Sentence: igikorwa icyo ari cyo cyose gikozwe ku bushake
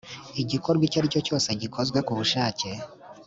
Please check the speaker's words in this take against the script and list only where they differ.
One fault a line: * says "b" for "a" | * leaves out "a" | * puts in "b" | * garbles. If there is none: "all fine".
all fine